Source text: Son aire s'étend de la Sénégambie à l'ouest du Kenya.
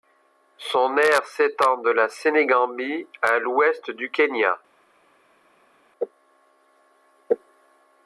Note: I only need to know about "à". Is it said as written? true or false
true